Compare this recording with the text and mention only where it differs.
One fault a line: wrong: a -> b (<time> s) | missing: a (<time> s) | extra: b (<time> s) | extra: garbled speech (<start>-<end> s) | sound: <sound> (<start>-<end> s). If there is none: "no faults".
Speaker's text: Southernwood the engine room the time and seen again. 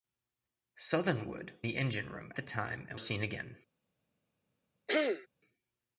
sound: throat clearing (4.9-5.3 s)